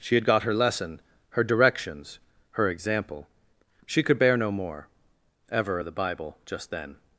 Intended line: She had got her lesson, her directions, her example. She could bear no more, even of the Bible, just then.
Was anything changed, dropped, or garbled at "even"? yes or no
yes